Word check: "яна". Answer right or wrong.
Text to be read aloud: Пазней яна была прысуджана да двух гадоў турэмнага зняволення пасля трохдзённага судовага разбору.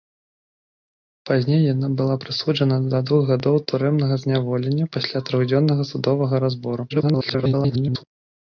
right